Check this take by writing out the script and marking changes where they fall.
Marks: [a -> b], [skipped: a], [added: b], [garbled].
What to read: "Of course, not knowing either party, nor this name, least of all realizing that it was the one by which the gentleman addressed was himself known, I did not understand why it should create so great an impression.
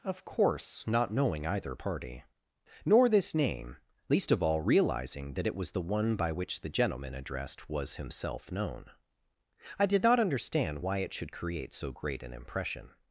"Of course, not knowing either party, nor this name, least of all realizing that it was the one by which the gentleman addressed was himself known, I did not understand why it should create so great an impression.